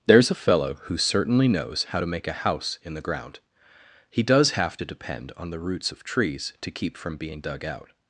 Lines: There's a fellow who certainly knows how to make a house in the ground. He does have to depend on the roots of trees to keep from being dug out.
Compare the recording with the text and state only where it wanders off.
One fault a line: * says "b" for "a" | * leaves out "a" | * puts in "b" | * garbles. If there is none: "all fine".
all fine